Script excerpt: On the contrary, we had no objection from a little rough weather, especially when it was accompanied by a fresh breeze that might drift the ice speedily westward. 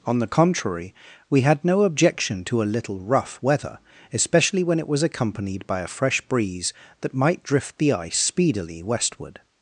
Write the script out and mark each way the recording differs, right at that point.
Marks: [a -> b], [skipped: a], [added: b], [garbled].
On the contrary, we had no objection [from -> to] a little rough weather, especially when it was accompanied by a fresh breeze that might drift the ice speedily westward.